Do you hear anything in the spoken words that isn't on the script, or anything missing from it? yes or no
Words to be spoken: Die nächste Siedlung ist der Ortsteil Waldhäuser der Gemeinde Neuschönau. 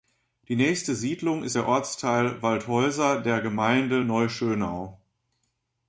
no